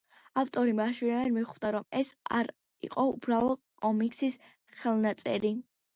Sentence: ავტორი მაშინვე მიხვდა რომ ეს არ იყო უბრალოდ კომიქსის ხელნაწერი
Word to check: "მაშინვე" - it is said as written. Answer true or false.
true